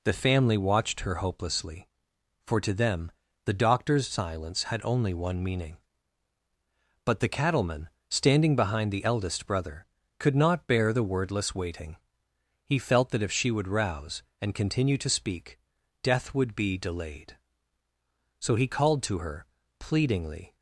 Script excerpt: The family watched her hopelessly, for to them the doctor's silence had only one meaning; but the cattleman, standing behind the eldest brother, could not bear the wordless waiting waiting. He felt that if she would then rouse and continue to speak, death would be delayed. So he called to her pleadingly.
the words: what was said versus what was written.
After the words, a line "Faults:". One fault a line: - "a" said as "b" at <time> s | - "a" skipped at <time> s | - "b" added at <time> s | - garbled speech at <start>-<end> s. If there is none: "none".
The family watched her hopelessly, for to them the doctor's silence had only one meaning; but the cattleman, standing behind the eldest brother, could not bear the wordless waiting. He felt that if she would rouse and continue to speak, death would be delayed. So he called to her pleadingly.
Faults:
- "waiting" skipped at 12.0 s
- "then" skipped at 13.7 s